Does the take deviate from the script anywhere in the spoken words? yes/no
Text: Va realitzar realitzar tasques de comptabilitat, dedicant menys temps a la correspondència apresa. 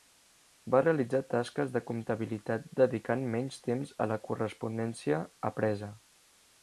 yes